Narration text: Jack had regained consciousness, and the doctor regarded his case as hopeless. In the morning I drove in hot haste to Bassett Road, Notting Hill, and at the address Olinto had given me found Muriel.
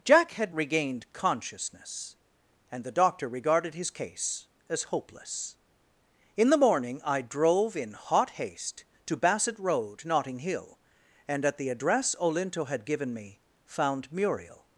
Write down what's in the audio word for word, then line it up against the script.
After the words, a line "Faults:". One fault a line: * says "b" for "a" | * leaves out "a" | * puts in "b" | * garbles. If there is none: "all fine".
Jack had regained consciousness, and the doctor regarded his case as hopeless. In the morning I drove in hot haste to Bassett Road, Notting Hill, and at the address Olinto had given me found Muriel.
Faults:
all fine